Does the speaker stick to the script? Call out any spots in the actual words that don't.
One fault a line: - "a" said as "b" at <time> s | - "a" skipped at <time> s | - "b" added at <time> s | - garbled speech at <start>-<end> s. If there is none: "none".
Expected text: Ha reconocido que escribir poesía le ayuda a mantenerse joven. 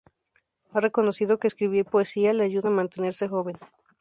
none